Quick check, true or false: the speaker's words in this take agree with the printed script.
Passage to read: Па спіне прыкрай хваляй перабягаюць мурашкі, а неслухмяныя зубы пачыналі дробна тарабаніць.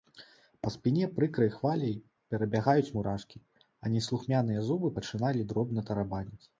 true